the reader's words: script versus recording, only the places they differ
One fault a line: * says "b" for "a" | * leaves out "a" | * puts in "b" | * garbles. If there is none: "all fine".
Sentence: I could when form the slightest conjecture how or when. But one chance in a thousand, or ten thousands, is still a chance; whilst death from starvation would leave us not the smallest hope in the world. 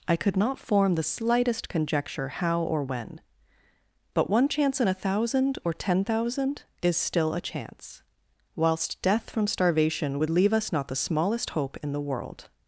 * says "not" for "when"
* says "thousand" for "thousands"